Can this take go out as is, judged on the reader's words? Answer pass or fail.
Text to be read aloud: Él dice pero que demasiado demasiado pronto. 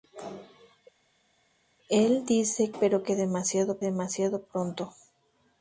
pass